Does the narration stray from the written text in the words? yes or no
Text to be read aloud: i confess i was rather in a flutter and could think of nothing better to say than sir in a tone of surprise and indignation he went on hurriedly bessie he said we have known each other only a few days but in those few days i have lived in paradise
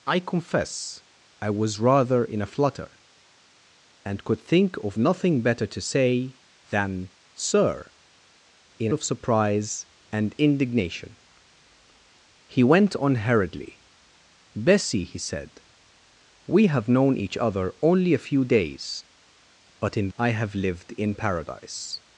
yes